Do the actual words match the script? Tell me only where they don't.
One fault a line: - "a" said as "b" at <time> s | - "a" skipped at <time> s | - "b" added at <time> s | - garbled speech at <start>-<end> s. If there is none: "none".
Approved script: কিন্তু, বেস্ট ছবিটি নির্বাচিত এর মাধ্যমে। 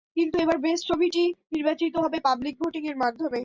- "এবার" added at 0.4 s
- "হবে পাবলিক ভোটিং" added at 2.0 s